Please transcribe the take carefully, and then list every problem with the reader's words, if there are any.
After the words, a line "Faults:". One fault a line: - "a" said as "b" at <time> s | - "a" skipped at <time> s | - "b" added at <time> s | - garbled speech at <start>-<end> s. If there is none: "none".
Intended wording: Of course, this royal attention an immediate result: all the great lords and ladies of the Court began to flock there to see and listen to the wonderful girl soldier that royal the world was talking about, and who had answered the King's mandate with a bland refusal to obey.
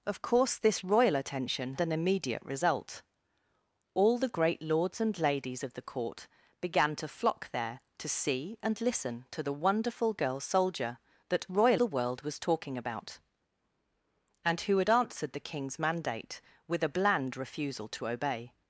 Of course, this royal attention an immediate result: all the great lords and ladies of the Court began to flock there to see and listen to the wonderful girl soldier that royal the world was talking about, and who had answered the King's mandate with a bland refusal to obey.
Faults:
none